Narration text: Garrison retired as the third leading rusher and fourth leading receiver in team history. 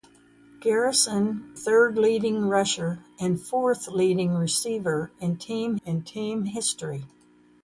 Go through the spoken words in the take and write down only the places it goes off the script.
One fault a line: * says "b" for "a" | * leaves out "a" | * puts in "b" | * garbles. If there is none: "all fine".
* leaves out "retired as the"
* puts in "in team"